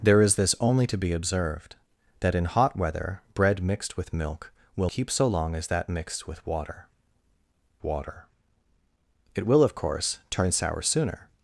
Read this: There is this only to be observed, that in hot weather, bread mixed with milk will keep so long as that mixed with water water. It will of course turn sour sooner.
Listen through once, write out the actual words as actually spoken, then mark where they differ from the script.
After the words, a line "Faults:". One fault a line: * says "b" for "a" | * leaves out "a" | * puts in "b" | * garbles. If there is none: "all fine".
There is this only to be observed, that in hot weather, bread mixed with milk will keep so long as that mixed with water water. It will of course turn sour sooner.
Faults:
all fine